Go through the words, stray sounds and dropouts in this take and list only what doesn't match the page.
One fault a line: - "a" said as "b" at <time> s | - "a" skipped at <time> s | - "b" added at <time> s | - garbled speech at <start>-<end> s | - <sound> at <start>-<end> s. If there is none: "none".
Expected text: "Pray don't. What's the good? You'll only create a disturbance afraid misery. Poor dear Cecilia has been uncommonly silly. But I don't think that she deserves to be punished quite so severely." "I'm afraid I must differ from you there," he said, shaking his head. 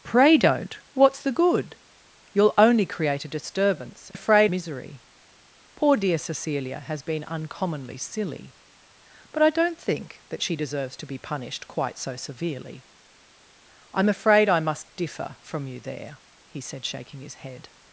none